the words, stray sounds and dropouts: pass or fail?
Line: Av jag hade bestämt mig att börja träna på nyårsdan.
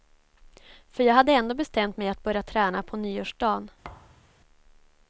fail